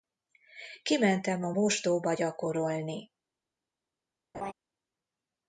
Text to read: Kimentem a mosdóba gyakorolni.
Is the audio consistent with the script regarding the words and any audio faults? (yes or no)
no